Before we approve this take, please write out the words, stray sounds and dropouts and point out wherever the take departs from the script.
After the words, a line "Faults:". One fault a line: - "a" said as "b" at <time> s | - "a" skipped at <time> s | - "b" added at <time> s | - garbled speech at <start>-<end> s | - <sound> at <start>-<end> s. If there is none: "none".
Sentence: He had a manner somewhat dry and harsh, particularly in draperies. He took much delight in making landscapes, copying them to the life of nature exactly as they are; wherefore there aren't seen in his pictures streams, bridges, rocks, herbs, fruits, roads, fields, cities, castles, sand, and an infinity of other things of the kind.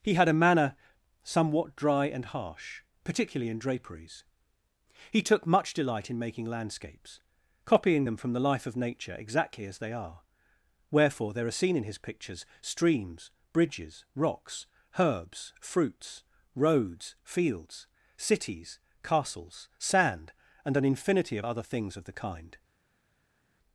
He had a manner somewhat dry and harsh, particularly in draperies. He took much delight in making landscapes, copying them from the life of nature exactly as they are; wherefore there are seen in his pictures streams, bridges, rocks, herbs, fruits, roads, fields, cities, castles, sand, and an infinity of other things of the kind.
Faults:
- "to" said as "from" at 8.1 s
- "aren't" said as "are" at 11.5 s